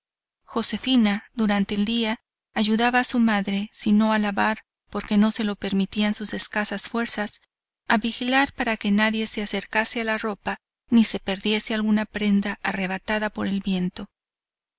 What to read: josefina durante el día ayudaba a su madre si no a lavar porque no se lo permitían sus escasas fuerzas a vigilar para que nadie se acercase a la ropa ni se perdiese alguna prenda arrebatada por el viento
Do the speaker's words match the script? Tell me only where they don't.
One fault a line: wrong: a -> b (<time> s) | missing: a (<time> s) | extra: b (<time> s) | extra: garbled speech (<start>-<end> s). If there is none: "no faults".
no faults